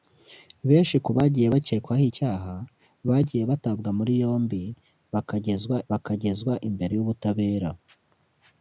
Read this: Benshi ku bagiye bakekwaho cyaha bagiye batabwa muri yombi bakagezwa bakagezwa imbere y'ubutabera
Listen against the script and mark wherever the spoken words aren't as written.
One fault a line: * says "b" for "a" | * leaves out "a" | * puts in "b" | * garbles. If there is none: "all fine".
all fine